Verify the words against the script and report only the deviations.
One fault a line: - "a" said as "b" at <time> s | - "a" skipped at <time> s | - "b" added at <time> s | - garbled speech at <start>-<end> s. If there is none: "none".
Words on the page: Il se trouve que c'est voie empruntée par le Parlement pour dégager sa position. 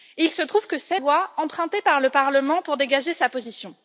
none